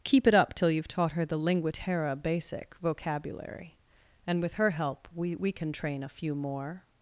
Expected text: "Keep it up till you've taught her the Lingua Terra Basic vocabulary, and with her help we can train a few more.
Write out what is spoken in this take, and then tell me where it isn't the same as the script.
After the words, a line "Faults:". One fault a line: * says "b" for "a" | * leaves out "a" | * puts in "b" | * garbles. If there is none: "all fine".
"Keep it up till you've taught her the Lingua Terra Basic vocabulary, and with her help we we can train a few more.
Faults:
* puts in "we"